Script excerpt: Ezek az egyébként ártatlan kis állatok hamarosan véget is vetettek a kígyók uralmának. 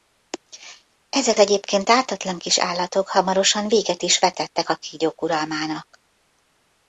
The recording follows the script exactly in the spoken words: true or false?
false